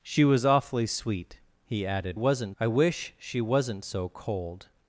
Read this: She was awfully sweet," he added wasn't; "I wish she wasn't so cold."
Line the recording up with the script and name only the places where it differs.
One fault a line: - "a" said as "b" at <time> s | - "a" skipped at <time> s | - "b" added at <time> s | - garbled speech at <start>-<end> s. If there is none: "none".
none